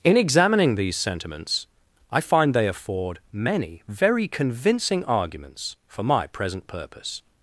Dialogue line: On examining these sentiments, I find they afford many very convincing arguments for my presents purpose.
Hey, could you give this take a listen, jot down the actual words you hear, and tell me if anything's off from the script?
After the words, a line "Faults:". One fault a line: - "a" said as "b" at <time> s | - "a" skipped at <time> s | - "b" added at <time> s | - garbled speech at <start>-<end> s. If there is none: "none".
In examining these sentiments, I find they afford many very convincing arguments for my present purpose.
Faults:
- "On" said as "In" at 0.0 s
- "presents" said as "present" at 6.3 s